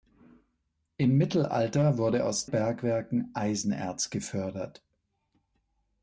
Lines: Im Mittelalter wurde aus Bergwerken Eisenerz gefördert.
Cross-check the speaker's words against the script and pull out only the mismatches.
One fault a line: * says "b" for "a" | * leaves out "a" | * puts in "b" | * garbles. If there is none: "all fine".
all fine